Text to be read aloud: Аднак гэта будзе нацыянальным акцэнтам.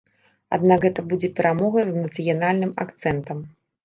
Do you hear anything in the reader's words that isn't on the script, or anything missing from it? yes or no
yes